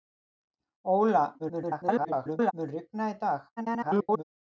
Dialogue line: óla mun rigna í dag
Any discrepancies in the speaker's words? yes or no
yes